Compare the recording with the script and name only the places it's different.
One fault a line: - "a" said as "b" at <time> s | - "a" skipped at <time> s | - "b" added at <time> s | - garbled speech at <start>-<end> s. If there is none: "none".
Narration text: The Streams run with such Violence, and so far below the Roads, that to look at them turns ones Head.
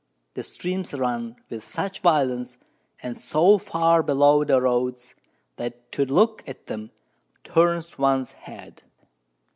none